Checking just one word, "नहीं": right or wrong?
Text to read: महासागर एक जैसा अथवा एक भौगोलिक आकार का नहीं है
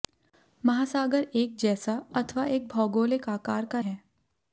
wrong